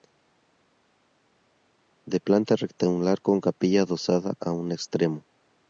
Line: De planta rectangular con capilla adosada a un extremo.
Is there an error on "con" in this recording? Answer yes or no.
no